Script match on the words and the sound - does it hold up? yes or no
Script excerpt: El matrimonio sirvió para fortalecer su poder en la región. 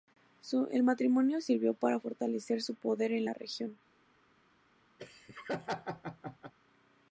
no